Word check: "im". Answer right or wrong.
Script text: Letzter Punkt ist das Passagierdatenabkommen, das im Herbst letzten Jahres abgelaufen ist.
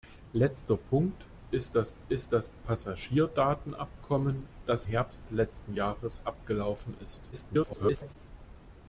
wrong